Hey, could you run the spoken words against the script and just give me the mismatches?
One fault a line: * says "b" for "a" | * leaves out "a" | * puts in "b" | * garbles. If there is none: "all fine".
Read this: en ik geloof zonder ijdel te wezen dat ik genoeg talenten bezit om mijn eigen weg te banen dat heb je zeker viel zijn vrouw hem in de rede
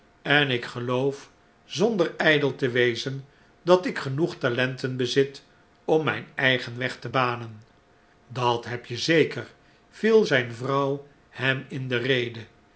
all fine